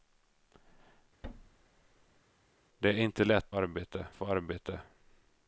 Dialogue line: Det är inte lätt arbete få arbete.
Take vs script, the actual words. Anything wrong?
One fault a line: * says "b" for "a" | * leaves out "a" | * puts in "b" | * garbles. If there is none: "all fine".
all fine